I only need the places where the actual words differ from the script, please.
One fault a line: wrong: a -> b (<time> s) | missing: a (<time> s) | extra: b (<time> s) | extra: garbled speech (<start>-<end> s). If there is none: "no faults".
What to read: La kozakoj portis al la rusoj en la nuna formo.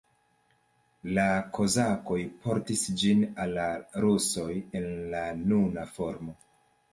extra: ĝin (3.0 s)